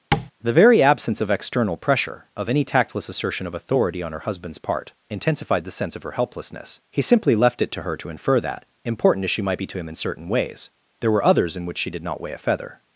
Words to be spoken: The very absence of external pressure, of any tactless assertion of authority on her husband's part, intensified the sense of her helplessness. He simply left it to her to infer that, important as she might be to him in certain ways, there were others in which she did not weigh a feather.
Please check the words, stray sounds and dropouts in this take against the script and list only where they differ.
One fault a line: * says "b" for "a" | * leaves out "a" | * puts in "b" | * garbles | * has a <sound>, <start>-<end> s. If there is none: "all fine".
* has a tap, 0.1-0.3 s